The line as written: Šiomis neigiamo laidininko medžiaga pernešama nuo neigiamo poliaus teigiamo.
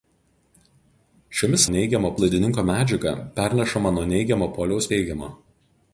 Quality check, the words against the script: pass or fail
pass